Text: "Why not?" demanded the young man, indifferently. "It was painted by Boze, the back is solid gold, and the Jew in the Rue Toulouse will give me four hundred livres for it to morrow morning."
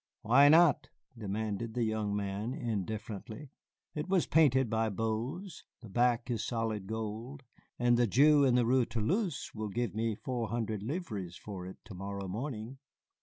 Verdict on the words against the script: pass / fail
pass